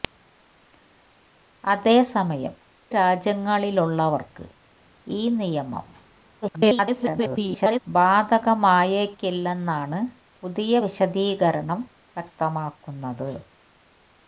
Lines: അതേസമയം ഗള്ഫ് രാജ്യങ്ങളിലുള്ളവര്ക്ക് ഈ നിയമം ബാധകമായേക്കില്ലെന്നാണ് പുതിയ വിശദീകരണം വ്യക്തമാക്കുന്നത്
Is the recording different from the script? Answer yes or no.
yes